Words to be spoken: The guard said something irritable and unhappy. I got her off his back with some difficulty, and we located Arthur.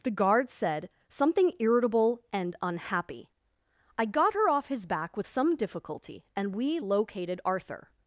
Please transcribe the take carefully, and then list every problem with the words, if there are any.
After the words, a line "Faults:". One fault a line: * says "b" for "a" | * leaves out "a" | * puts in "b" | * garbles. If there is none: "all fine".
The guard said something irritable and unhappy. I got her off his back with some difficulty, and we located Arthur.
Faults:
all fine